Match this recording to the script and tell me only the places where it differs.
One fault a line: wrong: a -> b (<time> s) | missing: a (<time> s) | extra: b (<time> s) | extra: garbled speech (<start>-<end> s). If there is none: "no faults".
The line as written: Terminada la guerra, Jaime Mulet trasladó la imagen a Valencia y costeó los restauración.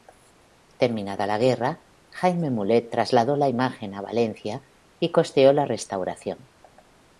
wrong: los -> la (5.5 s)